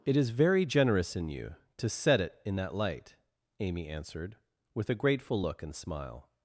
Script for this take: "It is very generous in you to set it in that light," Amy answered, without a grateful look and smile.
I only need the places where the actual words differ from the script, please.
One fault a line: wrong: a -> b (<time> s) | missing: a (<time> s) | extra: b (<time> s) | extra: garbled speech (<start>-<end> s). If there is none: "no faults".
wrong: without -> with (4.7 s)